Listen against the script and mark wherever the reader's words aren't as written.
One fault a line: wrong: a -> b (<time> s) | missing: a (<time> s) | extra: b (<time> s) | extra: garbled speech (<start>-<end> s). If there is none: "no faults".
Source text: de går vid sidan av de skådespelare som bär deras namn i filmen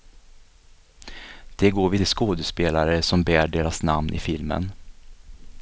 missing: sidan av (2.0 s)